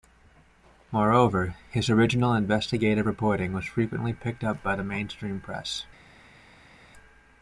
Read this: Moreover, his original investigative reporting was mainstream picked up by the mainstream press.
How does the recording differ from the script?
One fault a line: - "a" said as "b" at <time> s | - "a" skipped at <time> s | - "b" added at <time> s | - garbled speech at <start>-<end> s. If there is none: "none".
- "mainstream" said as "frequently" at 3.7 s